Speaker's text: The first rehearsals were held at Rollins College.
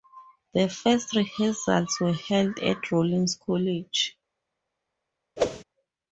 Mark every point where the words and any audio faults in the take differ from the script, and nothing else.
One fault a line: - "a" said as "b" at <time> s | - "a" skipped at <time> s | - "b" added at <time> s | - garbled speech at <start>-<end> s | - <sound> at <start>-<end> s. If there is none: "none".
- whoosh at 5.4-5.6 s